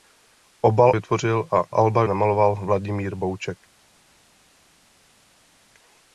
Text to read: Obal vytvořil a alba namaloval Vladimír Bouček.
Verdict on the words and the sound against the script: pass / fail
pass